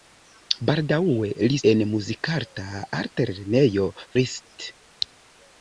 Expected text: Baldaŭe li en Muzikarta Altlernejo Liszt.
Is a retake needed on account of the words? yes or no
no